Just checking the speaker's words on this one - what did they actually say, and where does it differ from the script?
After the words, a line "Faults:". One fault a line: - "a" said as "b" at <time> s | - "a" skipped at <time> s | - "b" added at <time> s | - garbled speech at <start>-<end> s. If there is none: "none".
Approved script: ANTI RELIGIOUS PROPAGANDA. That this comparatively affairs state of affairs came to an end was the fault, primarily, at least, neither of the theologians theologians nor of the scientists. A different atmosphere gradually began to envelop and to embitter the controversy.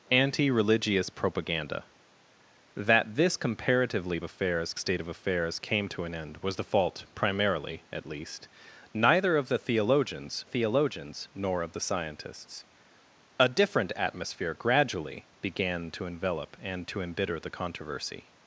ANTI RELIGIOUS PROPAGANDA. That this comparatively affairs state of affairs came to an end was the fault, primarily, at least, neither of the theologians theologians nor of the scientists. A different atmosphere gradually began to envelop and to embitter the controversy.
Faults:
none